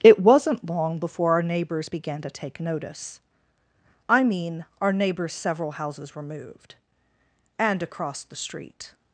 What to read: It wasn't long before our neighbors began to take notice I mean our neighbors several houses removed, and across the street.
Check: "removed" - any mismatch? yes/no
no